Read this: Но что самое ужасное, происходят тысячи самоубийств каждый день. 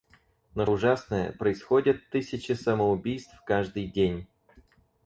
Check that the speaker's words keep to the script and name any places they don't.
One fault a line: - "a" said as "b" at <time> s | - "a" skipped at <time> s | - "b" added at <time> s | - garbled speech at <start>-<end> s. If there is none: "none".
- "что самое" skipped at 0.7 s